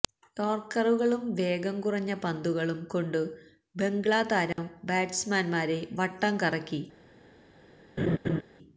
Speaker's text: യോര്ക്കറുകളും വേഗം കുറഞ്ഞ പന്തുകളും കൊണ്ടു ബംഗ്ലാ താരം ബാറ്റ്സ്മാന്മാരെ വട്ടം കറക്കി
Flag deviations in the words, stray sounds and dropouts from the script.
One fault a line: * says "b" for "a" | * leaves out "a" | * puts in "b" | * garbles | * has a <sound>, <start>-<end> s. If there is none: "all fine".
* has a dropout, 4.5-4.6 s
* has a laugh, 8.0-8.4 s